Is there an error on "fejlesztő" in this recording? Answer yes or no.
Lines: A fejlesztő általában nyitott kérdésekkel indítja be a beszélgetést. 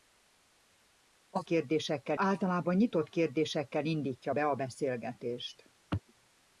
yes